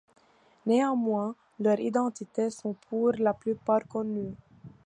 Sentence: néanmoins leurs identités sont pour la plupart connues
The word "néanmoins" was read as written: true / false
true